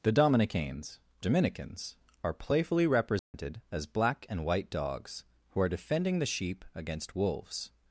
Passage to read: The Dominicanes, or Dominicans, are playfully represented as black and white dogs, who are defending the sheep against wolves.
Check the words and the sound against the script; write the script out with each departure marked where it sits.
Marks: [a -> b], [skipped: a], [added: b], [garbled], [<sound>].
The Dominicanes, [skipped: or] Dominicans, are playfully represented [dropout] as black and white dogs, who are defending the sheep against wolves.